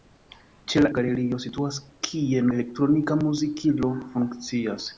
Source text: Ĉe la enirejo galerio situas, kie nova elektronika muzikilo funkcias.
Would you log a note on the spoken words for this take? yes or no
yes